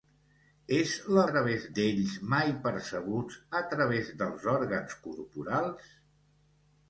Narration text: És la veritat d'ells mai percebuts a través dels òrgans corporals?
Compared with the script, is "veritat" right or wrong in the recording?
wrong